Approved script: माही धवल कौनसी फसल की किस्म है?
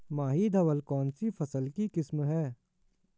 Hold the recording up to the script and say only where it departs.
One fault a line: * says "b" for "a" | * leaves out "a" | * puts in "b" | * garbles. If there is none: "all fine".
all fine